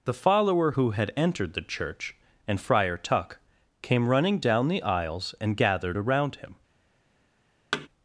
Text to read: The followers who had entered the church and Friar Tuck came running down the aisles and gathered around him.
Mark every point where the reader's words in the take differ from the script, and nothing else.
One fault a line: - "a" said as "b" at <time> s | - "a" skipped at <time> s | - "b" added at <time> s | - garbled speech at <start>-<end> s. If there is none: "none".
- "followers" said as "follower" at 0.1 s